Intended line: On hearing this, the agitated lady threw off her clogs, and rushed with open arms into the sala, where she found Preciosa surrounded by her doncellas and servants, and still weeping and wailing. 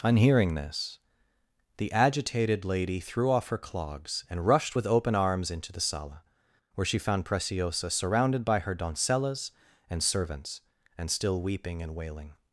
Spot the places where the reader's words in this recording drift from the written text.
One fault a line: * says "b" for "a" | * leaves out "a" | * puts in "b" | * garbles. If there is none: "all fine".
all fine